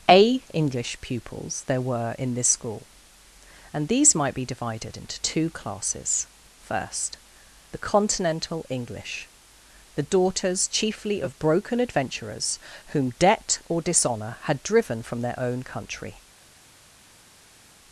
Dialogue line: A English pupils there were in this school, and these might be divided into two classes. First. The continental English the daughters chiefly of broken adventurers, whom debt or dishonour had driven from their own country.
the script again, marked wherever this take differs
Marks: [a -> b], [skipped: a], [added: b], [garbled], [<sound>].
A English pupils there were in this school, and these might be divided into two classes. First. The continental English the daughters chiefly of broken adventurers, whom debt or dishonour had driven from their own country.